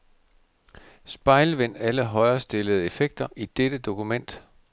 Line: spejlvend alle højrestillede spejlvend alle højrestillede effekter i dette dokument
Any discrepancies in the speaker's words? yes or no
yes